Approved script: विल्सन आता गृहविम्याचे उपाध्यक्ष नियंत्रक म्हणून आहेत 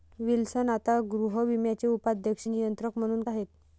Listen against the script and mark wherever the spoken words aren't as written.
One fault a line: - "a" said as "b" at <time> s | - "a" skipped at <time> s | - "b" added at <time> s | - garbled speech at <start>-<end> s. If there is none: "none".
none